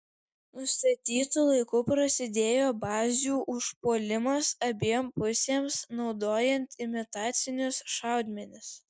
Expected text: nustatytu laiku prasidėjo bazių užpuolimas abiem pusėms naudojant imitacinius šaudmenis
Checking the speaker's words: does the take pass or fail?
pass